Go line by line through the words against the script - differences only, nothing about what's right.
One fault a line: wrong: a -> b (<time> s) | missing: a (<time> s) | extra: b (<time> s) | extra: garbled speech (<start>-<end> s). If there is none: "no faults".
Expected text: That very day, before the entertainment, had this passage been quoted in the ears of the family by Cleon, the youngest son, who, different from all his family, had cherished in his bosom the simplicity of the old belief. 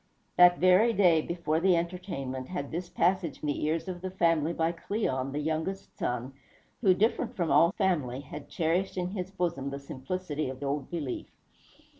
missing: been quoted in (3.5 s)
missing: his (7.7 s)
missing: the (10.6 s)